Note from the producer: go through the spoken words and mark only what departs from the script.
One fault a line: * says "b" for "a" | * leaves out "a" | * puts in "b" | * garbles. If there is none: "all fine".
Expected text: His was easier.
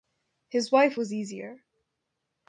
* puts in "wife"